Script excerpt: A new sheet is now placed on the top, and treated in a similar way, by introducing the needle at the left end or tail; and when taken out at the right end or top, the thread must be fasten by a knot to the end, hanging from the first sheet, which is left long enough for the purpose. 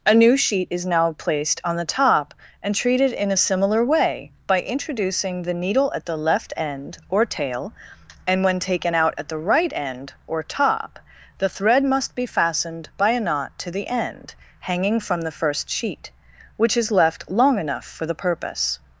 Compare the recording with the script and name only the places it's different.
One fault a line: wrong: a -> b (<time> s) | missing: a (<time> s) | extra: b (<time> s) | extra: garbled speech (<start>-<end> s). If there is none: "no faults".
wrong: fasten -> fastened (12.2 s)